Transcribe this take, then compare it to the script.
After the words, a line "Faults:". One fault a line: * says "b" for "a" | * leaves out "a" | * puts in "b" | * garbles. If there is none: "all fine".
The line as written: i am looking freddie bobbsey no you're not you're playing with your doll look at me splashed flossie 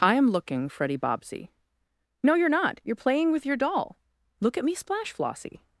i am looking freddie bobbsey no you're not you're playing with your doll look at me splash flossie
Faults:
* says "splash" for "splashed"